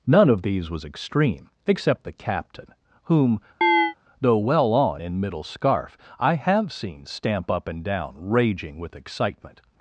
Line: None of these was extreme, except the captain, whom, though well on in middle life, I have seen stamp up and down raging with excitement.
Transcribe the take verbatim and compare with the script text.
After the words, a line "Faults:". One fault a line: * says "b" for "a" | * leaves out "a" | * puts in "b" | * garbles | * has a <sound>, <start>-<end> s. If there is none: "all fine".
None of these was extreme, except the captain, whom, though well on in middle scarf, I have seen stamp up and down raging with excitement.
Faults:
* has a chirp, 3.6-3.9 s
* says "scarf" for "life"